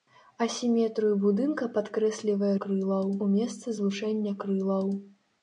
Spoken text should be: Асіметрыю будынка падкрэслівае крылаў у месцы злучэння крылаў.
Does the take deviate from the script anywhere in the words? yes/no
no